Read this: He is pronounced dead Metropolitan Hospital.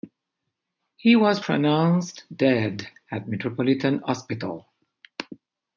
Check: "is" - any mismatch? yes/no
yes